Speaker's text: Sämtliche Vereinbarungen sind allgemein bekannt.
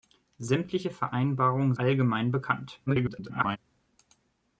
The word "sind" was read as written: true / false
false